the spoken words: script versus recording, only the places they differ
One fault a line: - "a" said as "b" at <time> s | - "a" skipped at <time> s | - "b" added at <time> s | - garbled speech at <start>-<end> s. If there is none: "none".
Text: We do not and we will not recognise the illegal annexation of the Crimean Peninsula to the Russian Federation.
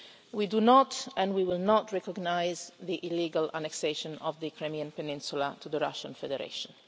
none